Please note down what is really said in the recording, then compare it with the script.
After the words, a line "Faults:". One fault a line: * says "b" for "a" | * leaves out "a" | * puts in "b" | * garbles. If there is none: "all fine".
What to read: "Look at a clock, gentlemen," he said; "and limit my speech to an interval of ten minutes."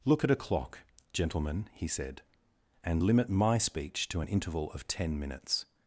"Look at a clock, gentlemen," he said; "and limit my speech to an interval of ten minutes."
Faults:
all fine